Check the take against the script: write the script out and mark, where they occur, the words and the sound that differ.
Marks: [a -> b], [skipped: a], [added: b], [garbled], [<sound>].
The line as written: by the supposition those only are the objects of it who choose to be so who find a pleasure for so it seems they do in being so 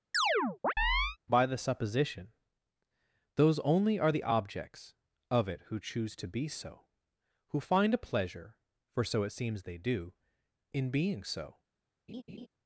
[chirp] by the supposition those only are the objects of it who choose to be so who find a pleasure for so it seems they do in being so [laugh]